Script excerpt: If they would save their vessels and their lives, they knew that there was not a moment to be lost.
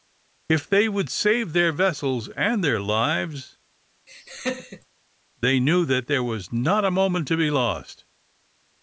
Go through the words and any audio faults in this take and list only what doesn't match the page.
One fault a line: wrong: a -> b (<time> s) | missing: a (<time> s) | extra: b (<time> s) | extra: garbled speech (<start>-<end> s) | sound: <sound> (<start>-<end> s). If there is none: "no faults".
sound: laugh (4.1-4.9 s)